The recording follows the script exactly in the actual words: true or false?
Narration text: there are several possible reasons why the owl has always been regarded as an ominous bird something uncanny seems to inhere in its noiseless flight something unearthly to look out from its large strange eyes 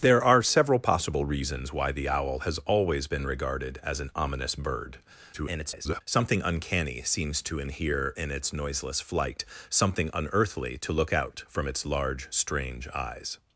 false